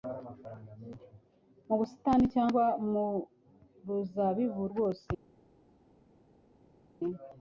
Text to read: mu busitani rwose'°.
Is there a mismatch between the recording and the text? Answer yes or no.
yes